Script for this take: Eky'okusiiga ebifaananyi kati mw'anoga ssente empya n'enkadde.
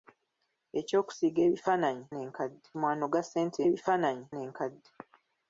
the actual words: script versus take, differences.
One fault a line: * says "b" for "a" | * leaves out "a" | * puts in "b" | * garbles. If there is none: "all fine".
* says "n'enkadde" for "kati"
* says "ebifaananyi" for "empya"